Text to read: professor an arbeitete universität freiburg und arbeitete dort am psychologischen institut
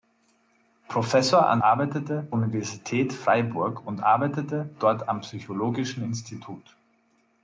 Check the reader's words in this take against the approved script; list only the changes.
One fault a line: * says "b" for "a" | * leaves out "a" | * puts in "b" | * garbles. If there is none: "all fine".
all fine